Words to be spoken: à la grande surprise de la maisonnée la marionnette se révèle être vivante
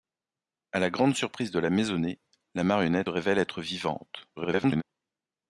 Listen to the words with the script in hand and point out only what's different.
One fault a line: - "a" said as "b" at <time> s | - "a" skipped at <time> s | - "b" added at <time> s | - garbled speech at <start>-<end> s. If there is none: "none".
- "se" skipped at 3.1 s
- garbled speech at 4.4-4.8 s